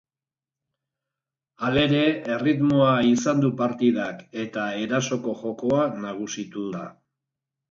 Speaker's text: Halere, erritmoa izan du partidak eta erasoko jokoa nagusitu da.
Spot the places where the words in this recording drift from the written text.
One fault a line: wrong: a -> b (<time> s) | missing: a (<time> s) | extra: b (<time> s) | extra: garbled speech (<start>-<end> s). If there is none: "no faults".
no faults